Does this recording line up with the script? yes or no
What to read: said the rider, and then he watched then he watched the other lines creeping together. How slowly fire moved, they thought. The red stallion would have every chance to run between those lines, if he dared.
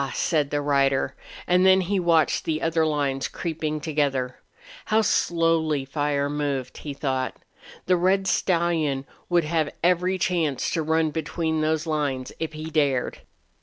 no